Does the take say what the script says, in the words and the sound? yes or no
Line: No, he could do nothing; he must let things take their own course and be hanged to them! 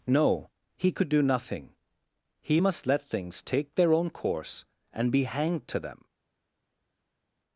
yes